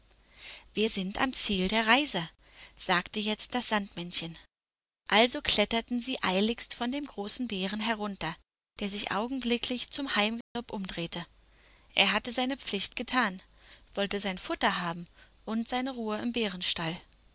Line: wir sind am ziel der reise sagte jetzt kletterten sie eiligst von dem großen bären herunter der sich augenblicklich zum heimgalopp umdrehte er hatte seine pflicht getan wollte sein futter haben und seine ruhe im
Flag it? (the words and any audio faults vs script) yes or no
yes